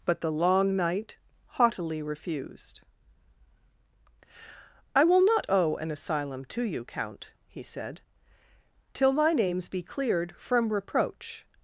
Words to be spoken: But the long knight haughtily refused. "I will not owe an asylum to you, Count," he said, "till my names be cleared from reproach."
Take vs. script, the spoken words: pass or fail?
pass